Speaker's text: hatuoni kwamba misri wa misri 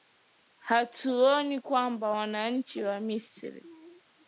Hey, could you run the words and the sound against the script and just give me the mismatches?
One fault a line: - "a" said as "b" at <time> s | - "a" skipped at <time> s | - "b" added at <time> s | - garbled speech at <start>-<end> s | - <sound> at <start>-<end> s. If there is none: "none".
- "misri" said as "wananchi" at 2.1 s